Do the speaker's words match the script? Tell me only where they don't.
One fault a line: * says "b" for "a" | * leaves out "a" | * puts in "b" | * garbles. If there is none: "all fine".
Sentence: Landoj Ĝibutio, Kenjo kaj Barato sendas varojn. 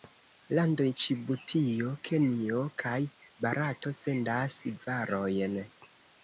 all fine